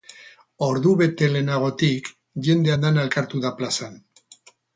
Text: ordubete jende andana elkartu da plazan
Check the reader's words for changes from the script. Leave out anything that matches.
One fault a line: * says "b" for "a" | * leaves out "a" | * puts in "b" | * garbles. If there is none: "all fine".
* puts in "lehenagotik"